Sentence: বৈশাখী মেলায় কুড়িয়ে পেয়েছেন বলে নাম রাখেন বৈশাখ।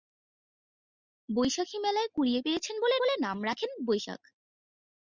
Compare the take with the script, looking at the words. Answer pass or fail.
fail